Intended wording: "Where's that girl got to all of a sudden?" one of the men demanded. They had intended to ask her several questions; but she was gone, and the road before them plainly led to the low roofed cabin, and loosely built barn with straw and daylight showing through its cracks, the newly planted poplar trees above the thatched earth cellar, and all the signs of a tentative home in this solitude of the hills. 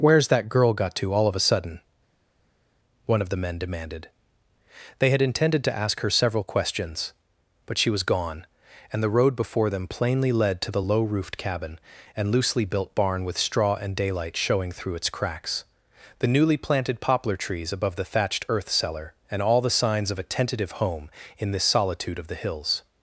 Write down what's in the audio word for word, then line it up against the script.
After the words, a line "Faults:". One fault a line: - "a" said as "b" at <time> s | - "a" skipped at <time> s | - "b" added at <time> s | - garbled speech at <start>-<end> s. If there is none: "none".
"Where's that girl got to all of a sudden?" one of the men demanded. They had intended to ask her several questions; but she was gone, and the road before them plainly led to the low roofed cabin, and loosely built barn with straw and daylight showing through its cracks, the newly planted poplar trees above the thatched earth cellar, and all the signs of a tentative home in this solitude of the hills.
Faults:
none